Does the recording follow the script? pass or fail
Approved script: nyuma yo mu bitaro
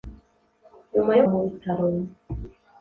pass